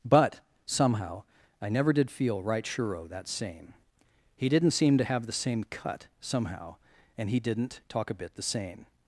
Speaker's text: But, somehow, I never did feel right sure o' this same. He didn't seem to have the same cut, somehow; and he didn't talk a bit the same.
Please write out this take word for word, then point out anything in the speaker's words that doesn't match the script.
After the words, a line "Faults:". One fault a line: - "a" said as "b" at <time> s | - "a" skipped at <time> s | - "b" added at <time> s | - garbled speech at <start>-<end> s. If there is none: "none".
But, somehow, I never did feel right sure o' that same. He didn't seem to have the same cut, somehow; and he didn't talk a bit the same.
Faults:
- "this" said as "that" at 3.1 s